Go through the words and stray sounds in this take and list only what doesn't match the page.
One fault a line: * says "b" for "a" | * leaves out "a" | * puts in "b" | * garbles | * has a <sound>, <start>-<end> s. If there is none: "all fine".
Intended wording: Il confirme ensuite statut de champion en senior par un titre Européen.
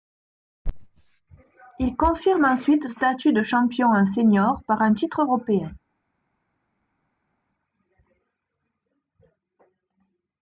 all fine